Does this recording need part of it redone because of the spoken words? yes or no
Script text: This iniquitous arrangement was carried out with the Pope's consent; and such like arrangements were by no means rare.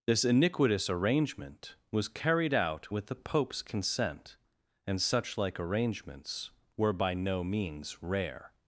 no